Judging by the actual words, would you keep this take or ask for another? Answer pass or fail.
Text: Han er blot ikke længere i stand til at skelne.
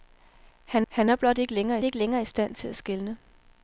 fail